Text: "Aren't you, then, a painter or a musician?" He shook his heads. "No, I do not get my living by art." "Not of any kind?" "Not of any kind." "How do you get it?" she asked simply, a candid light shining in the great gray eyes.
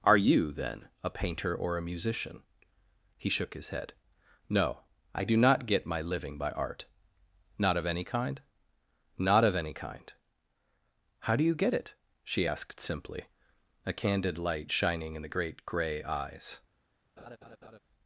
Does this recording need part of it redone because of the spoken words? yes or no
yes